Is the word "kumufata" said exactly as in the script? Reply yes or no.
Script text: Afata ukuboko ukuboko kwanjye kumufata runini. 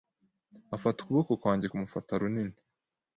yes